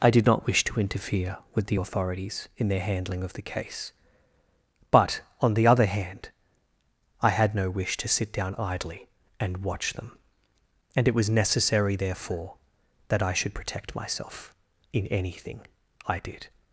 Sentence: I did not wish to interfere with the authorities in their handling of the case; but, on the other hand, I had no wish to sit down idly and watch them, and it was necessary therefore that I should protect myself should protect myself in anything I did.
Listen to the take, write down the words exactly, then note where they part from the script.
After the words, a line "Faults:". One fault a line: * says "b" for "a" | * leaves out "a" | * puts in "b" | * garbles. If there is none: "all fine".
I did not wish to interfere with the authorities in their handling of the case; but, on the other hand, I had no wish to sit down idly and watch them, and it was necessary therefore that I should protect myself in anything I did.
Faults:
* leaves out "should protect myself"